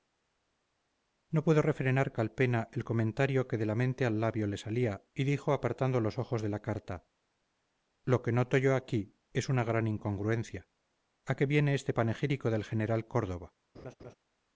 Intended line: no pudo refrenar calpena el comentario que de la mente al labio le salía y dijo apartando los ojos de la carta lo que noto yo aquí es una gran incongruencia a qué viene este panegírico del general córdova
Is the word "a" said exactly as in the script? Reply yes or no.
yes